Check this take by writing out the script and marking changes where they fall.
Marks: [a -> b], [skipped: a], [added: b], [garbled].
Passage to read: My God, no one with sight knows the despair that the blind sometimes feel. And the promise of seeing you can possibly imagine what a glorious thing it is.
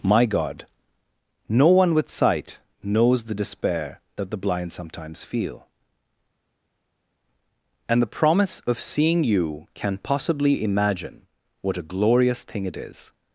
My God, no one with sight knows the despair that the blind sometimes feel. And the promise of seeing you can possibly imagine what a glorious thing it is.